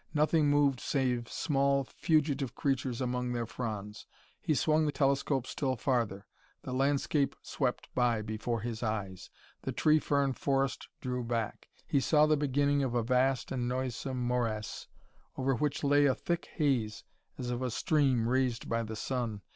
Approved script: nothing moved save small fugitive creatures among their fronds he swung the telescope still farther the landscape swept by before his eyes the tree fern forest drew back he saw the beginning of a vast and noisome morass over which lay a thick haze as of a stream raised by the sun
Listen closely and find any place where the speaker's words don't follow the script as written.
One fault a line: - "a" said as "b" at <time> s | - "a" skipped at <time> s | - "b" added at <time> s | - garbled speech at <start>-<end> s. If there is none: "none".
none